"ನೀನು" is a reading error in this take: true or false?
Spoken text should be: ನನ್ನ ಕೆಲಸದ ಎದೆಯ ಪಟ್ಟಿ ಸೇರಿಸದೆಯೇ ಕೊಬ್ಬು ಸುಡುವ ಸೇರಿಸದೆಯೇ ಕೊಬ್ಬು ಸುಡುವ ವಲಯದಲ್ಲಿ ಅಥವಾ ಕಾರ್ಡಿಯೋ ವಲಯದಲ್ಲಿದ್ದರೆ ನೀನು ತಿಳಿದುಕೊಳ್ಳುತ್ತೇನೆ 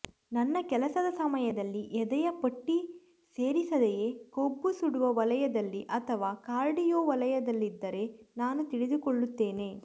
true